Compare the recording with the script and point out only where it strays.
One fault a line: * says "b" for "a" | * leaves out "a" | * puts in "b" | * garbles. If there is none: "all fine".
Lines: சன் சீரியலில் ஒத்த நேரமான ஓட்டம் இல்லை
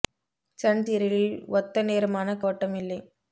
all fine